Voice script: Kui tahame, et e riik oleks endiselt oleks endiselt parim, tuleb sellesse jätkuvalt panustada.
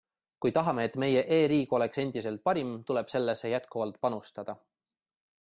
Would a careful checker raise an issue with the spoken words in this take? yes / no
yes